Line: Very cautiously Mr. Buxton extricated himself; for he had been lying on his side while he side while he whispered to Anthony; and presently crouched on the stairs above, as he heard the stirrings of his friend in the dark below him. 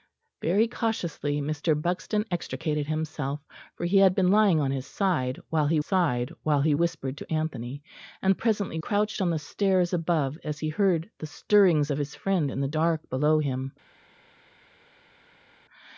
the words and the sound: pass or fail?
pass